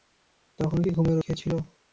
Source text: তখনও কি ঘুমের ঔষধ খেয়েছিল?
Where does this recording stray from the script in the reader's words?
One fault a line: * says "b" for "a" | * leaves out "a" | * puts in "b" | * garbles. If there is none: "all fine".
* leaves out "ঔষধ"